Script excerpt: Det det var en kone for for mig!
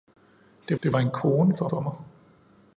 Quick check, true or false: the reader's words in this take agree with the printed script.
true